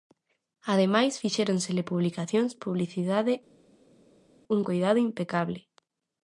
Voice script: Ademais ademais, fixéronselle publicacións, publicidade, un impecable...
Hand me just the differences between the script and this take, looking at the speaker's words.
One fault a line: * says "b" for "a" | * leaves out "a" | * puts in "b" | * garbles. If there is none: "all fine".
* leaves out "ademais"
* puts in "coidado"